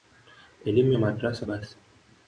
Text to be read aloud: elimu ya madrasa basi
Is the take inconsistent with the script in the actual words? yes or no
no